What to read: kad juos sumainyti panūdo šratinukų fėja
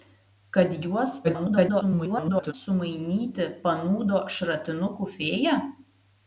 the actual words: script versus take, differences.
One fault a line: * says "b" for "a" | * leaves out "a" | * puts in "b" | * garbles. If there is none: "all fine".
* garbles